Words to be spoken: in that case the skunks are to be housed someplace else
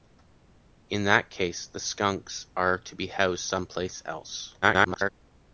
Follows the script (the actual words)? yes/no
no